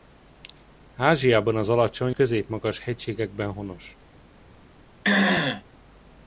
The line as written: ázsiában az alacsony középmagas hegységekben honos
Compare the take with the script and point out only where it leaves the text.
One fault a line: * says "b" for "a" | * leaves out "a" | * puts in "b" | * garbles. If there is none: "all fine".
all fine